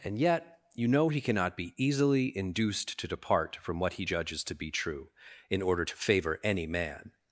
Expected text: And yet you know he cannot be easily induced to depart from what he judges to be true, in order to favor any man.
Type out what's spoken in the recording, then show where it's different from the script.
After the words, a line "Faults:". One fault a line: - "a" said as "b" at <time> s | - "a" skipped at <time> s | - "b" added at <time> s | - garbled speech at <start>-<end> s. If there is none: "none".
And yet you know he cannot be easily induced to depart from what he judges to be true, in order to favor any man.
Faults:
none